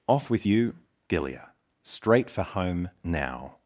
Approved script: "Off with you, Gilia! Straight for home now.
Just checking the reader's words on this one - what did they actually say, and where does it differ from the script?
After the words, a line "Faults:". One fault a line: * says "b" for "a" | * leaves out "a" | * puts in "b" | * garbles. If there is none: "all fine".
"Off with you, Gilia! Straight for home now.
Faults:
all fine